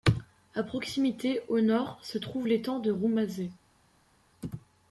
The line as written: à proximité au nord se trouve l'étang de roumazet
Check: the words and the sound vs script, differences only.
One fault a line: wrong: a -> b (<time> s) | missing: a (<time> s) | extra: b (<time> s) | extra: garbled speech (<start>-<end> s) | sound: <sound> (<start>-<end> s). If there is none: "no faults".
no faults